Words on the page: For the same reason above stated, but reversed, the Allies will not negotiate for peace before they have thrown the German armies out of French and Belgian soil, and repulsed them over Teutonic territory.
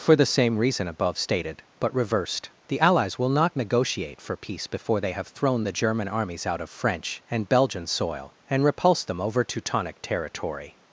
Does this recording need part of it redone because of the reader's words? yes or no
no